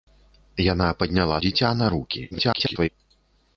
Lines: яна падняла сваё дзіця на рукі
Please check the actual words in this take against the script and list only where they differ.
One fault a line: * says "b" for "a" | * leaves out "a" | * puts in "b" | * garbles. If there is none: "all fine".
* leaves out "сваё"
* garbles